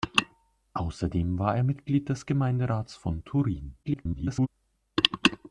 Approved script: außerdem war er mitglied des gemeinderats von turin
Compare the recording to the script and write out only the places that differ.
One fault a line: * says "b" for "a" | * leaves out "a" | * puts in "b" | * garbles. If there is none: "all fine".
* garbles